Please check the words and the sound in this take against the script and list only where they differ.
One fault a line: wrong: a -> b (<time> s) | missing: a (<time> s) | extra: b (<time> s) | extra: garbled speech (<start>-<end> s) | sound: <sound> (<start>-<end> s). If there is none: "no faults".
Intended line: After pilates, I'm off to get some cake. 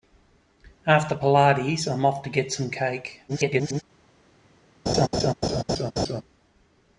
extra: garbled speech (3.3-3.8 s)
sound: laugh (4.9-6.2 s)